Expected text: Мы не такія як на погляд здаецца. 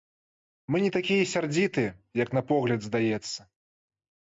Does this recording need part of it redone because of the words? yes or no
yes